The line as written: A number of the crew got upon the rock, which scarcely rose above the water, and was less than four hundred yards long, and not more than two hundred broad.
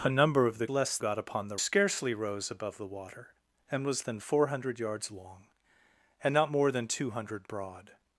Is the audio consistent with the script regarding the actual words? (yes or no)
no